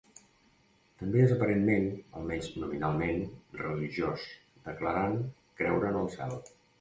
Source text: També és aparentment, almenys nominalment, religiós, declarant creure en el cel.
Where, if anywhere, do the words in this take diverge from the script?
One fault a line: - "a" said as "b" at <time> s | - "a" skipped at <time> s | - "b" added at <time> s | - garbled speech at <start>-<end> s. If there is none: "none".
none